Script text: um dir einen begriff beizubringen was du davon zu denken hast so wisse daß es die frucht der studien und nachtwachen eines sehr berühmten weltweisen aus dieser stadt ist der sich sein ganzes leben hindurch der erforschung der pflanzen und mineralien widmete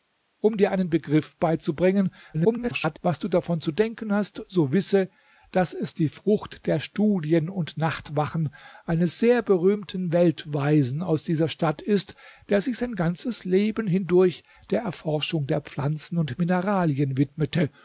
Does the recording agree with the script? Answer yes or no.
no